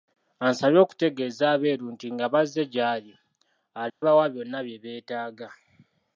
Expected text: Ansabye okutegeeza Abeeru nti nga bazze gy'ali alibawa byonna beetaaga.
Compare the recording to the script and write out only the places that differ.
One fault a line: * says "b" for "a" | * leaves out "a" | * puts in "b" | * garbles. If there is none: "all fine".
* puts in "bye"